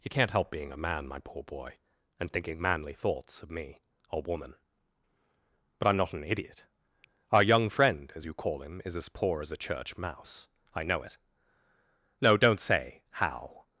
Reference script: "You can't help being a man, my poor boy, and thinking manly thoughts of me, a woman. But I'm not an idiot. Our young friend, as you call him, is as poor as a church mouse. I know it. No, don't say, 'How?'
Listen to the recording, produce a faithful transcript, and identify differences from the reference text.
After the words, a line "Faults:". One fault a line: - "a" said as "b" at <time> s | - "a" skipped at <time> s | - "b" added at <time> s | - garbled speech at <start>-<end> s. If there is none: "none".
"You can't help being a man, my poor boy, and thinking manly thoughts of me, a woman. But I'm not an idiot. Our young friend, as you call him, is as poor as a church mouse. I know it. No, don't say, 'How?'
Faults:
none